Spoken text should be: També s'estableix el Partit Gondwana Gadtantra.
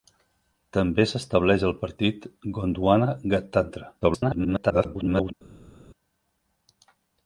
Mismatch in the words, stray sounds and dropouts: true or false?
true